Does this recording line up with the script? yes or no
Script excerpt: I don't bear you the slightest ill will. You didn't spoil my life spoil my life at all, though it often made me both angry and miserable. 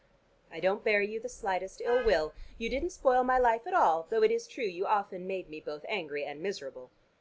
no